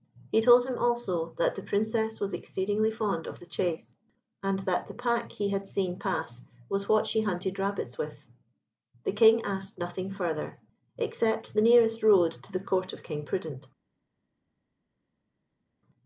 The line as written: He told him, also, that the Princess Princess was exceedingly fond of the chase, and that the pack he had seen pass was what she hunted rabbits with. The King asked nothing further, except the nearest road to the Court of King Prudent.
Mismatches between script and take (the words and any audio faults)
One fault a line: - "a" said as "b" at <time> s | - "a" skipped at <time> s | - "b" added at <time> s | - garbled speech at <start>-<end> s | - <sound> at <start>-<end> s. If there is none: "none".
- "Princess" skipped at 2.2 s